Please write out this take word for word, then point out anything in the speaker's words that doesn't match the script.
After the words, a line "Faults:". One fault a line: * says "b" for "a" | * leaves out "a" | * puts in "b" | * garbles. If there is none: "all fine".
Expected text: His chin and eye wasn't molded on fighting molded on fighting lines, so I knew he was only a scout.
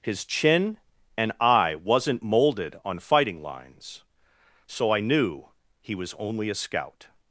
His chin and eye wasn't molded on fighting lines, so I knew he was only a scout.
Faults:
* leaves out "molded on fighting"